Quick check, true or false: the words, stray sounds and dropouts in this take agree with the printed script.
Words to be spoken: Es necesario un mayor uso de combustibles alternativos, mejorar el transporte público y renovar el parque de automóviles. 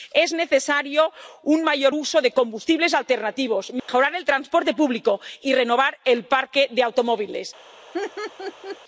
false